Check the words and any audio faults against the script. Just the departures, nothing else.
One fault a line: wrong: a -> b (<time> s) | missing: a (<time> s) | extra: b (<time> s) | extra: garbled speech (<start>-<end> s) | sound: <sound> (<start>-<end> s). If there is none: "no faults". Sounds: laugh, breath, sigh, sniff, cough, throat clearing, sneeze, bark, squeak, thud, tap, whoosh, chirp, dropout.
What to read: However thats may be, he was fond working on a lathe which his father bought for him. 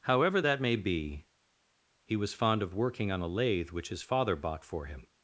wrong: thats -> that (0.4 s)
extra: of (2.6 s)